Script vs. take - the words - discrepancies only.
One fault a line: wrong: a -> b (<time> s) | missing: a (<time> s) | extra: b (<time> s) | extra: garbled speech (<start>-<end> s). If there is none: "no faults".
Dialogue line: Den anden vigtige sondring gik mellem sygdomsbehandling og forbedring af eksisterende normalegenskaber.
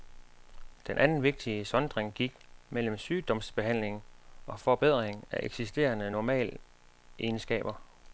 no faults